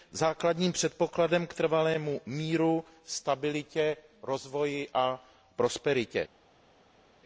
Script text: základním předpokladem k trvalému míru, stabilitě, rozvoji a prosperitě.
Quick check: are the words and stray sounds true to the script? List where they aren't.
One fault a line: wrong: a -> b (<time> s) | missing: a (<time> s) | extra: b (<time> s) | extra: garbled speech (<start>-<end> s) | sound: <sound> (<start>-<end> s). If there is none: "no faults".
no faults